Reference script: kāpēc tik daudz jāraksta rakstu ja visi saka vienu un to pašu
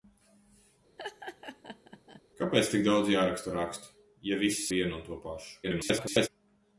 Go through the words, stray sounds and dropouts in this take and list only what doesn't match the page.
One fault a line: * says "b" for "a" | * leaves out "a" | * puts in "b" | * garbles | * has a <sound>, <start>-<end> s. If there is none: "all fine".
* has a laugh, 1.0-2.2 s
* leaves out "saka"
* garbles